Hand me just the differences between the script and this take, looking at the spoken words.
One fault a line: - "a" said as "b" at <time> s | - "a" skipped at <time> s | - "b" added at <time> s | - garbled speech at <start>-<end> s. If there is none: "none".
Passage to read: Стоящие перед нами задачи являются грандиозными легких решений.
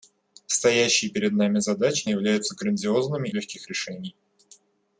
none